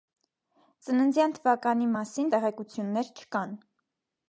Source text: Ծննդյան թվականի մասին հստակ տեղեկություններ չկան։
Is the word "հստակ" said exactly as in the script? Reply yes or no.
no